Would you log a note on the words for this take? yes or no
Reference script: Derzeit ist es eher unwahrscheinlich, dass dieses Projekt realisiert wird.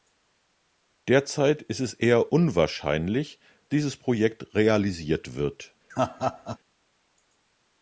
yes